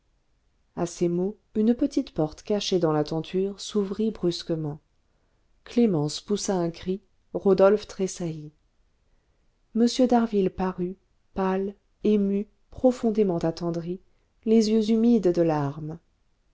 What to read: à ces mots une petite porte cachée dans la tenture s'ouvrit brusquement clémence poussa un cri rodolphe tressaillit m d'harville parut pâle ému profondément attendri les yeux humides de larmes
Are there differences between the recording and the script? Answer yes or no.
no